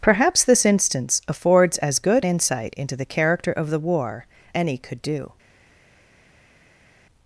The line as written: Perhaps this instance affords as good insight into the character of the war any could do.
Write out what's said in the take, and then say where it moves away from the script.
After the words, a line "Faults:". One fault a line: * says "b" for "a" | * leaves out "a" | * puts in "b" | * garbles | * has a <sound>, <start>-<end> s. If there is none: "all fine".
Perhaps this instance affords as good insight into the character of the war any could do.
Faults:
all fine